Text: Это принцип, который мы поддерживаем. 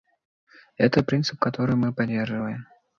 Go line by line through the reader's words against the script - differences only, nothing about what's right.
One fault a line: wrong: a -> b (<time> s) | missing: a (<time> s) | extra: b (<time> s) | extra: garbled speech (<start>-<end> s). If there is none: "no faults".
no faults